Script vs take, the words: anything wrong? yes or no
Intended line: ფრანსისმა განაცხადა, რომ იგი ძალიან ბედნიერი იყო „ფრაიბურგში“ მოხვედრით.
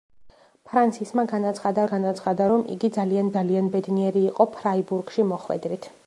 yes